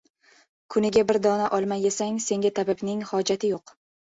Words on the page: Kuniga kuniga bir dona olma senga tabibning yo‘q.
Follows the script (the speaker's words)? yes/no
no